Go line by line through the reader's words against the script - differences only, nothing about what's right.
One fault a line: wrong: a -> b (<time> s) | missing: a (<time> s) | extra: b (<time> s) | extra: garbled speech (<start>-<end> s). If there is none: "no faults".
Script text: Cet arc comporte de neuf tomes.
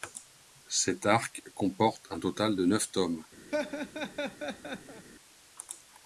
extra: un total (2.1 s)